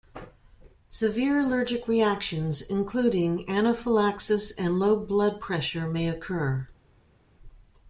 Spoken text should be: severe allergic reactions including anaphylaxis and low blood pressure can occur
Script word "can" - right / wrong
wrong